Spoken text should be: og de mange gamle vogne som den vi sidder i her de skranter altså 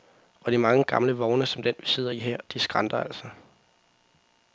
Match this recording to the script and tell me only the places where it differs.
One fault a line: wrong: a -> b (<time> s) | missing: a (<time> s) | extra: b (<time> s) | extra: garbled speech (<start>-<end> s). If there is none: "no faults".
no faults